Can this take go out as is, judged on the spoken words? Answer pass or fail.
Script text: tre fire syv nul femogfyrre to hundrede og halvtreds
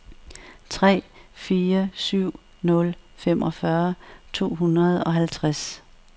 pass